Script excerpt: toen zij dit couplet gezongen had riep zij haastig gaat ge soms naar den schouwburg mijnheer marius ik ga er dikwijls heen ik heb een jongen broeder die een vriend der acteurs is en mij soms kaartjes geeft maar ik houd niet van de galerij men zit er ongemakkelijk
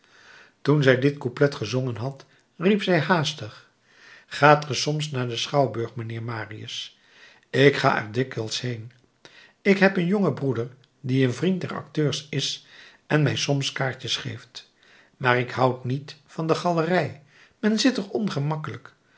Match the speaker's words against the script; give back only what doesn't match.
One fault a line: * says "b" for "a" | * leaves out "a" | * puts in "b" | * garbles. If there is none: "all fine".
all fine